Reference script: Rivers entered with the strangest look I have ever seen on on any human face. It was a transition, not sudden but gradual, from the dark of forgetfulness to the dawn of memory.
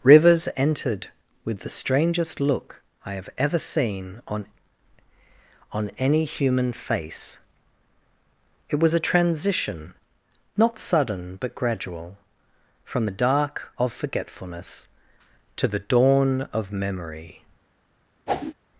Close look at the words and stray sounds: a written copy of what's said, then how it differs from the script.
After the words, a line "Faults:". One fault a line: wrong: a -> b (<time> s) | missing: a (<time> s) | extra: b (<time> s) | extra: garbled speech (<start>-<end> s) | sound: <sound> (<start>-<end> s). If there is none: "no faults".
Rivers entered with the strangest look I have ever seen on on any human face. It was a transition, not sudden but gradual, from the dark of forgetfulness to the dawn of memory.
Faults:
sound: whoosh (18.3-18.5 s)